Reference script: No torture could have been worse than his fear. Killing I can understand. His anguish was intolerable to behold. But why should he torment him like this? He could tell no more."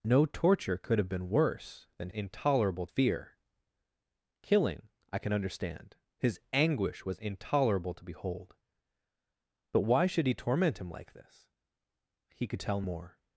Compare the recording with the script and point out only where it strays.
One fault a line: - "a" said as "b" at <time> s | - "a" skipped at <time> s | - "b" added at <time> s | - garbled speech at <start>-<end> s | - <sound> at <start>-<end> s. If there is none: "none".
- "his" said as "intolerable" at 2.1 s
- "no" skipped at 12.8 s